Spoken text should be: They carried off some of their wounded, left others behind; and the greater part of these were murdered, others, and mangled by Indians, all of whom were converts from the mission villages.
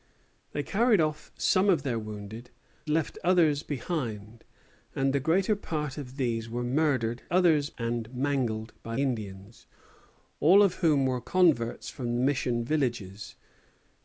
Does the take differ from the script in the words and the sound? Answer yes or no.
no